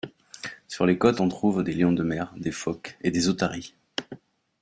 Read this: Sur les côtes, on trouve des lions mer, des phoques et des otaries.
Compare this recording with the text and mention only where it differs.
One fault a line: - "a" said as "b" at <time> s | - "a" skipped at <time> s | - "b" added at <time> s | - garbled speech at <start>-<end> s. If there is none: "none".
- "de" added at 1.9 s